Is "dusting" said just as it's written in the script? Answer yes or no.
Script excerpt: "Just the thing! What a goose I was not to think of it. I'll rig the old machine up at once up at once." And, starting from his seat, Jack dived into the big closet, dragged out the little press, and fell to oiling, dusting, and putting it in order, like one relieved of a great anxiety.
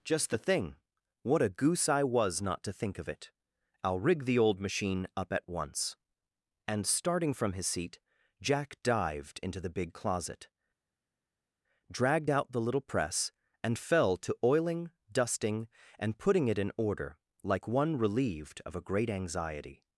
yes